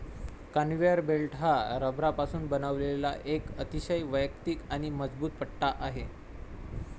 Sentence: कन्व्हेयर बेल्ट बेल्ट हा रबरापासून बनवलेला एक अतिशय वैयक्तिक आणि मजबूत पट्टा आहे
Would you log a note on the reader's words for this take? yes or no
yes